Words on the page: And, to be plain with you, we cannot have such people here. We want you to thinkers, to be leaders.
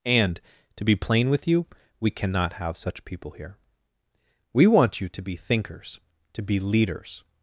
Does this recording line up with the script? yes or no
no